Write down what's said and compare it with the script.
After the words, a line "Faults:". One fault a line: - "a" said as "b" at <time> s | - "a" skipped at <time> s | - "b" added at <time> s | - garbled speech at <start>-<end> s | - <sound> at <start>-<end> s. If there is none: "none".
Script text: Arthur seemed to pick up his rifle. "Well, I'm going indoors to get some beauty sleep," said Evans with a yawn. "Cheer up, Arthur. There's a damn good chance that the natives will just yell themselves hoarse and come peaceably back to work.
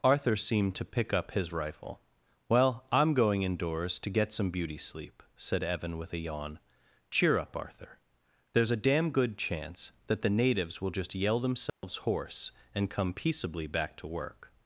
Arthur seemed to pick up his rifle. "Well, I'm going indoors to get some beauty sleep," said Evan with a yawn. "Cheer up, Arthur. There's a damn good chance that the natives will just yell themselves hoarse and come peaceably back to work.
Faults:
- "Evans" said as "Evan" at 5.6 s
- dropout at 11.7-11.8 s